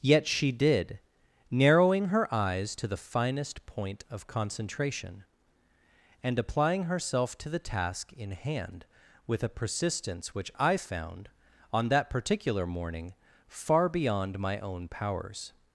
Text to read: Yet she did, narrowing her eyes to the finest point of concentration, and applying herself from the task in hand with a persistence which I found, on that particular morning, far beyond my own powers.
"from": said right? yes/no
no